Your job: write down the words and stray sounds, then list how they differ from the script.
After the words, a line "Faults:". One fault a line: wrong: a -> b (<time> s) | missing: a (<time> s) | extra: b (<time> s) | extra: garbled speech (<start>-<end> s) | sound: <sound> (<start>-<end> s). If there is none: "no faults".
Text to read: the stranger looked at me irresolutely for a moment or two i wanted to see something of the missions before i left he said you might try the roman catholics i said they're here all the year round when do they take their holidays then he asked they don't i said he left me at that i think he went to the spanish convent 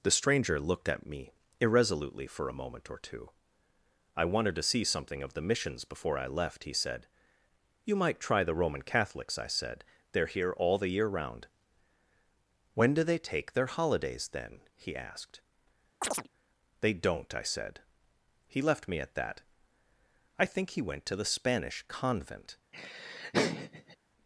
the stranger looked at me irresolutely for a moment or two i wanted to see something of the missions before i left he said you might try the roman catholics i said they're here all the year round when do they take their holidays then he asked they don't i said he left me at that i think he went to the spanish convent
Faults:
sound: chirp (16.0-16.3 s)
sound: laugh (22.7-24.0 s)